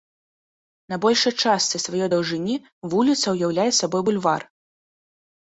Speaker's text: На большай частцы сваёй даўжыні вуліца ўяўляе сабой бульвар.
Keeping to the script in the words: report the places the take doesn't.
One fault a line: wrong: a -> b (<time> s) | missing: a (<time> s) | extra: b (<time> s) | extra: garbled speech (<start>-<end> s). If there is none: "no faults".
no faults